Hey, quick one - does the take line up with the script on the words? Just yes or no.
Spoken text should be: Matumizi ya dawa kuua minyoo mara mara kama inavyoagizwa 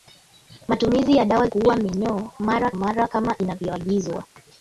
yes